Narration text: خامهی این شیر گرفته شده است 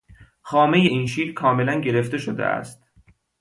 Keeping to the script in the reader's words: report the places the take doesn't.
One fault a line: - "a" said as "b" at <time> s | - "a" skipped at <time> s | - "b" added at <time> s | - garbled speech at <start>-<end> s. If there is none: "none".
- "کاملا" added at 1.3 s